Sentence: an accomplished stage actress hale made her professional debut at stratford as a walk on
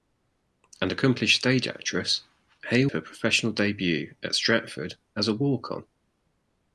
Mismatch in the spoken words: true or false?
true